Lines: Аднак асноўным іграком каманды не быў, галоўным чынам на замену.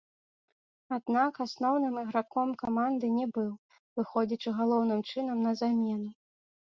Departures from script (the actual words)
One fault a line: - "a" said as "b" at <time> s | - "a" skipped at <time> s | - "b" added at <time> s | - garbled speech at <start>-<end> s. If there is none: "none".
- "выходзячы" added at 4.0 s